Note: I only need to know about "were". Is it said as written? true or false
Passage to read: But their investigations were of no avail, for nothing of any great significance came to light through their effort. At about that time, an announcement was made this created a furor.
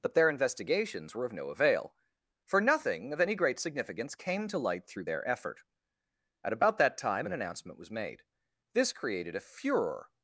true